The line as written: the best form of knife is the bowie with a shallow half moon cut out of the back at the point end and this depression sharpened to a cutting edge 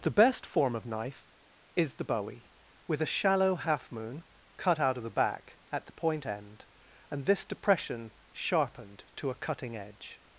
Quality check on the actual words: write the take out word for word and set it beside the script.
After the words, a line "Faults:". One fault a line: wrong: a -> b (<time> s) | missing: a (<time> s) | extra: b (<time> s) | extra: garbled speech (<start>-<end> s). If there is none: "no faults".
the best form of knife is the bowie with a shallow half moon cut out of the back at the point end and this depression sharpened to a cutting edge
Faults:
no faults